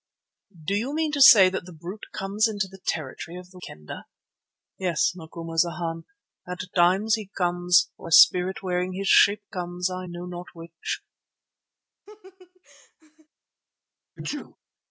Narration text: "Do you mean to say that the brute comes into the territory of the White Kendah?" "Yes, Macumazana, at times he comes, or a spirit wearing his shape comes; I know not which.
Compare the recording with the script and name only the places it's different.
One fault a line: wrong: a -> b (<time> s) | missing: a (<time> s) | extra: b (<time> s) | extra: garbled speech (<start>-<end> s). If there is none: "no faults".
missing: White (3.6 s)